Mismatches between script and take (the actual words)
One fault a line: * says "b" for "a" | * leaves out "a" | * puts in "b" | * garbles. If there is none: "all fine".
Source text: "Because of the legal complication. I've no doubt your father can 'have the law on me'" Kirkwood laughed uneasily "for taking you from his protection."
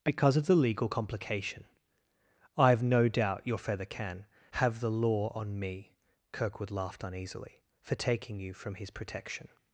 * says "feather" for "father"